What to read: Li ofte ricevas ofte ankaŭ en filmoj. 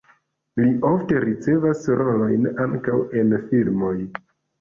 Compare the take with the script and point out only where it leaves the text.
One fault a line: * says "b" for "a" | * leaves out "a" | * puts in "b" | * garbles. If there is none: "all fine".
* says "rolojn" for "ofte"